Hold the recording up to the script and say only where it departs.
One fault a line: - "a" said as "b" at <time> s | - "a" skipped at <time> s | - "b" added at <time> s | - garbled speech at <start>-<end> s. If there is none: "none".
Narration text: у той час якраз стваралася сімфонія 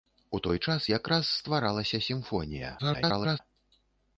- garbled speech at 2.8-3.4 s